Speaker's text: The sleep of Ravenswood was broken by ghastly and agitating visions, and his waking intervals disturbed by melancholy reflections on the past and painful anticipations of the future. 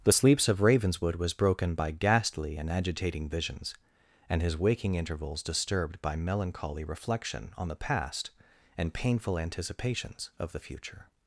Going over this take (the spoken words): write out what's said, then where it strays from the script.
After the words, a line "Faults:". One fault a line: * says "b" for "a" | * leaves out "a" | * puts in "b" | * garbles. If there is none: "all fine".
The sleeps of Ravenswood was broken by ghastly and agitating visions, and his waking intervals disturbed by melancholy reflection on the past and painful anticipations of the future.
Faults:
* says "sleeps" for "sleep"
* says "reflection" for "reflections"